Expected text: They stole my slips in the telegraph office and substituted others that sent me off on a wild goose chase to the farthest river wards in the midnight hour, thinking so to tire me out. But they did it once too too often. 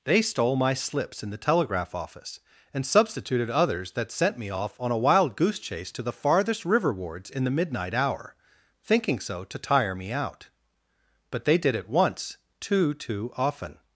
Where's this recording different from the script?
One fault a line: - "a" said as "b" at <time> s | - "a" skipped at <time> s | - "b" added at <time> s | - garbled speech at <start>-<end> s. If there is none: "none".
none